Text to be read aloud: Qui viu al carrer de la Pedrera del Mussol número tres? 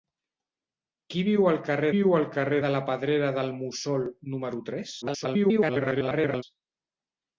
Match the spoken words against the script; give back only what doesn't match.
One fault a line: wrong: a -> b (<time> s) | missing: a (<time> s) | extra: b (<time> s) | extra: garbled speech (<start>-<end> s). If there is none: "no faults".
extra: viu al carrer (1.9 s)
extra: garbled speech (5.0-6.4 s)